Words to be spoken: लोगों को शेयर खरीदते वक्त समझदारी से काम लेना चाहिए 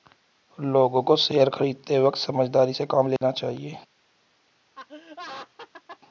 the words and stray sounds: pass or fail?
fail